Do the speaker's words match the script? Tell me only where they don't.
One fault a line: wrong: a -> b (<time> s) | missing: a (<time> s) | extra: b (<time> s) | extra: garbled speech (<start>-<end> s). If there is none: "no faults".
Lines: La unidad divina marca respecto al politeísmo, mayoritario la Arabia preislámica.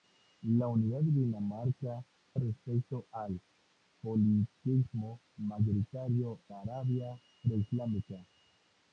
no faults